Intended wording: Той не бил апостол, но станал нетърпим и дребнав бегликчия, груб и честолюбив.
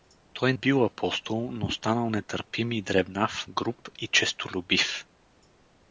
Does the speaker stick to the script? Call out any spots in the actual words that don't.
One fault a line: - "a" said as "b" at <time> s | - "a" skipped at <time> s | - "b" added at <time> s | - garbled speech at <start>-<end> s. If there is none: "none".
- "не" skipped at 0.5 s
- "бегликчия" skipped at 3.4 s